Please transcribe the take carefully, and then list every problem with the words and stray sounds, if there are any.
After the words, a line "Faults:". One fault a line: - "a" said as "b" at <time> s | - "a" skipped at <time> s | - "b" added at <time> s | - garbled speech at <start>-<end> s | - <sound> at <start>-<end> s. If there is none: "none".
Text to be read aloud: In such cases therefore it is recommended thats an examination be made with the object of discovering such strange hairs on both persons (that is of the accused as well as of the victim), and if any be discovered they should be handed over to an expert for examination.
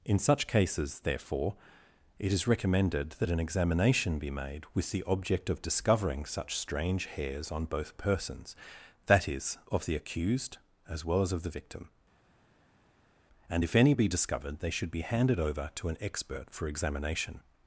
In such cases therefore it is recommended that an examination be made with the object of discovering such strange hairs on both persons (that is of the accused as well as of the victim), and if any be discovered they should be handed over to an expert for examination.
Faults:
- "thats" said as "that" at 3.1 s